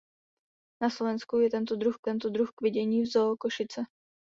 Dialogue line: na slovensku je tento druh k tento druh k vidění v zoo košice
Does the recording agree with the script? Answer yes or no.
yes